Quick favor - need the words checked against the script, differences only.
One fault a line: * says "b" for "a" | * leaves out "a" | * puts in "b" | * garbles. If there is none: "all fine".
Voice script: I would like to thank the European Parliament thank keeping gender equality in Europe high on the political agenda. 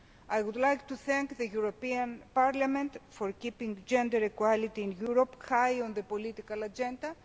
* says "for" for "thank"